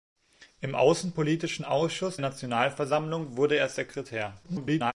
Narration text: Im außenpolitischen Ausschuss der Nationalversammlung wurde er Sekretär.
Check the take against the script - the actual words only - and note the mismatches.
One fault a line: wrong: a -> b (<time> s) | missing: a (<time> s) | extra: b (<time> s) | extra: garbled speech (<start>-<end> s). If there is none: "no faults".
missing: der (2.2 s)
extra: garbled speech (4.4-4.9 s)